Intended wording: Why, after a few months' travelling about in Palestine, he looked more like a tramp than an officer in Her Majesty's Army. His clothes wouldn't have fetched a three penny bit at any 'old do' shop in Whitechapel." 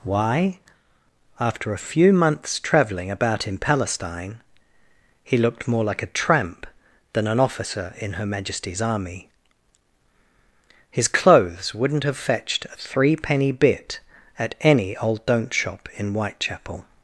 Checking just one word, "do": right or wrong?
wrong